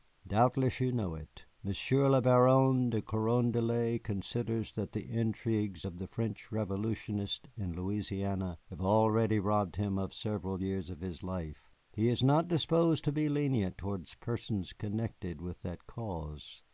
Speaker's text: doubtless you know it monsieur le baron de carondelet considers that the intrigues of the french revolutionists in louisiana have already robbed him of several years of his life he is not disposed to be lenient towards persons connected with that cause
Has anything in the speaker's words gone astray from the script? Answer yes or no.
no